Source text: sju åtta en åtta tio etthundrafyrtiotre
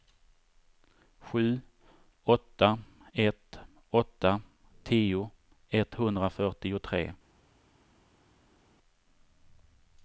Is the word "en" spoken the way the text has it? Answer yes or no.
no